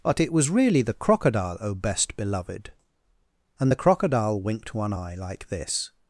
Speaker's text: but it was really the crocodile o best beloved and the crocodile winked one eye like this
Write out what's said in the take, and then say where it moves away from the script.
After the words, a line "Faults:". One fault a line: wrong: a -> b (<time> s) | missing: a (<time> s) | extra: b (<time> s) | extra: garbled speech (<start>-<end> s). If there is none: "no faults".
but it was really the crocodile o best beloved and the crocodile winked one eye like this
Faults:
no faults